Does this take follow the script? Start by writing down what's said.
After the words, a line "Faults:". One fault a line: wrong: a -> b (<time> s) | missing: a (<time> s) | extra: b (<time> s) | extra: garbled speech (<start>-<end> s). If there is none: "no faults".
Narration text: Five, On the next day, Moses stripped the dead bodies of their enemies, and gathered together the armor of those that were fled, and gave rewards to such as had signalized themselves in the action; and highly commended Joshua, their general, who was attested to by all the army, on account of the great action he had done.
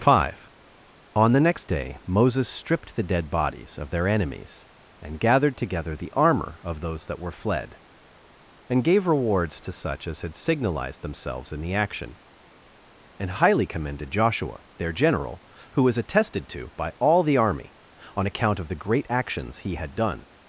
Five, On the next day, Moses stripped the dead bodies of their enemies, and gathered together the armor of those that were fled, and gave rewards to such as had signalized themselves in the action; and highly commended Joshua, their general, who was attested to by all the army, on account of the great actions he had done.
Faults:
wrong: action -> actions (19.1 s)